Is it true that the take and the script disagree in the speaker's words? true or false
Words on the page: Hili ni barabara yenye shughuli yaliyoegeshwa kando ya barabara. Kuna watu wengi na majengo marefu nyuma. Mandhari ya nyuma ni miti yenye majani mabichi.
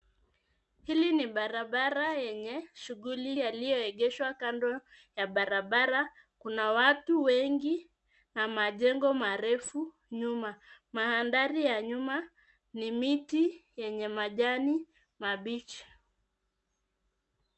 false